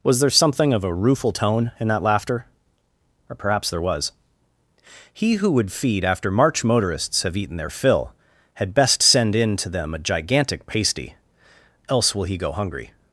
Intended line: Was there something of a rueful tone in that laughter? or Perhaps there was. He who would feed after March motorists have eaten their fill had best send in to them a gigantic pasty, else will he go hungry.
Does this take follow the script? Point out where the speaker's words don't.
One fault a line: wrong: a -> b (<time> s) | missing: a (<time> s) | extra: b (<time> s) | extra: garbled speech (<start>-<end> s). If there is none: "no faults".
no faults